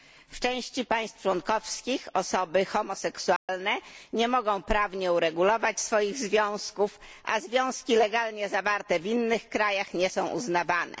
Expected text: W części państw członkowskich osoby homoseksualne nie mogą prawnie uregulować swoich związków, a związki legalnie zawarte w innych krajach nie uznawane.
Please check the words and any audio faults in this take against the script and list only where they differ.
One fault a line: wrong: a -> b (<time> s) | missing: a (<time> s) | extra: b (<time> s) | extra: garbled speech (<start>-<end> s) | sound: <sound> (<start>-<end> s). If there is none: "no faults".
sound: dropout (3.4-3.5 s)
extra: są (10.1 s)